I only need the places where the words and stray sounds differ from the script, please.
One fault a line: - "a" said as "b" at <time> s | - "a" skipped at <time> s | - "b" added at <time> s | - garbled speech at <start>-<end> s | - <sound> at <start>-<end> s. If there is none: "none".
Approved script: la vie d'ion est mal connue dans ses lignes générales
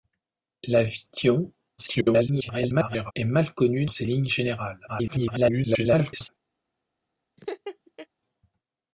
- garbled speech at 1.8-3.1 s
- "dans" skipped at 3.9 s
- garbled speech at 4.9-6.3 s
- laugh at 7.4-8.1 s